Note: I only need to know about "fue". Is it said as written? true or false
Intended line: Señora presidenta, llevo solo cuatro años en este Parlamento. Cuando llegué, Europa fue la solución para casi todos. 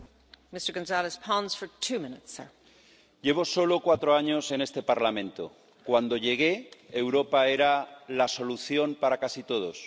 false